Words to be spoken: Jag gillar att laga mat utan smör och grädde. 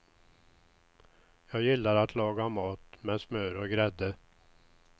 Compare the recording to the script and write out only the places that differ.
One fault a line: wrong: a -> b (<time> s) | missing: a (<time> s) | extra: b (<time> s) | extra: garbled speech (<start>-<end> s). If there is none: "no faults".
wrong: utan -> med (3.0 s)